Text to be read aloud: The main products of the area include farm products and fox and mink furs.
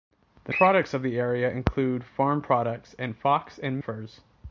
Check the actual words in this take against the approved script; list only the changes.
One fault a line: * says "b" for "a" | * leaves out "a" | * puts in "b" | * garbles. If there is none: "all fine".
* leaves out "main"
* leaves out "mink"